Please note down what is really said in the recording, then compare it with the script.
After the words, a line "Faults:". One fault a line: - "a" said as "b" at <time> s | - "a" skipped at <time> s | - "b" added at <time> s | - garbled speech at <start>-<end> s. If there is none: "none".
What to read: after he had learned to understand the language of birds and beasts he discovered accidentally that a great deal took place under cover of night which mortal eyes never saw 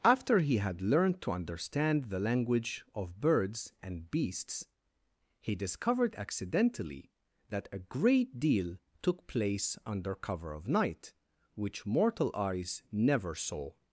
after he had learned to understand the language of birds and beasts he discovered accidentally that a great deal took place under cover of night which mortal eyes never saw
Faults:
none